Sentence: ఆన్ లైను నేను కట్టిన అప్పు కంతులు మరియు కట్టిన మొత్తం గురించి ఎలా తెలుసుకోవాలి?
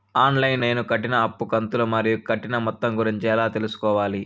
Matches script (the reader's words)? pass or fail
pass